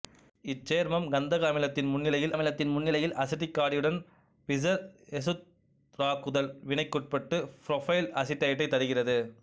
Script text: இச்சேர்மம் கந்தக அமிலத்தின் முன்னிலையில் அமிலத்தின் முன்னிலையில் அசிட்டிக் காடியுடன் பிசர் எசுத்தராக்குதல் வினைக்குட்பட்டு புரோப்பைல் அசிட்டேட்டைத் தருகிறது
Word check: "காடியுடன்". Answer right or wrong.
right